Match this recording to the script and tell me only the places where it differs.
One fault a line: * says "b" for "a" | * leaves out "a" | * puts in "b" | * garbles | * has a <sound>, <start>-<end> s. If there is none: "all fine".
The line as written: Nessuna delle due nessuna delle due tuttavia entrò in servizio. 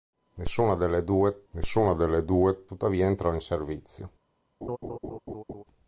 * has a laugh, 4.6-5.6 s